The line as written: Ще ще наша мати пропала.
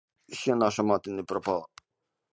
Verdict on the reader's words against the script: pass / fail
fail